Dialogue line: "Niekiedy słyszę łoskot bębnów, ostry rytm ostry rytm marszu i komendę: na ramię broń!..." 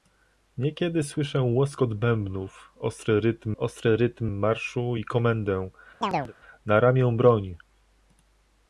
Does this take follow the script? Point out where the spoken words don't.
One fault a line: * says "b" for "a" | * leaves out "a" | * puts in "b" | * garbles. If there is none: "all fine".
all fine